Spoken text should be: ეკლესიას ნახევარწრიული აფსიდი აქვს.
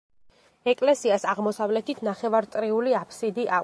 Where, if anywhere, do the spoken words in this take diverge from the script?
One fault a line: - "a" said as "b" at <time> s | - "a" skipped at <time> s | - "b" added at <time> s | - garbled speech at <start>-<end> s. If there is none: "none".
- "აღმოსავლეთით" added at 1.3 s